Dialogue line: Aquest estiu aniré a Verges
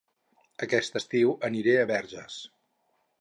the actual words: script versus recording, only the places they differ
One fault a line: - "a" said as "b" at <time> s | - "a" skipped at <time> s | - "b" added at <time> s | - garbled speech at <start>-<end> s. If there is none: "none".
none